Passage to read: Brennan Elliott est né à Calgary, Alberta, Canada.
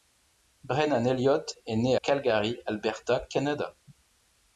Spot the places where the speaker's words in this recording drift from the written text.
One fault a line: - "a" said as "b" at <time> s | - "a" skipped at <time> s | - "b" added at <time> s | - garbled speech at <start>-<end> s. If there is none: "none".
- "à" skipped at 1.9 s